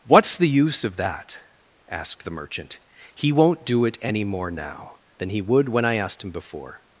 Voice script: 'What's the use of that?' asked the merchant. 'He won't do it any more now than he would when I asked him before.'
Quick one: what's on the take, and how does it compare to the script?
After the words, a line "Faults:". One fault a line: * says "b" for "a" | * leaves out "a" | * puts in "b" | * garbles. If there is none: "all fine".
'What's the use of that?' asked the merchant. 'He won't do it any more now than he would when I asked him before.'
Faults:
all fine